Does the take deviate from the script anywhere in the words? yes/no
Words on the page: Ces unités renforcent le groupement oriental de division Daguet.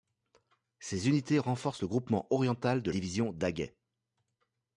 no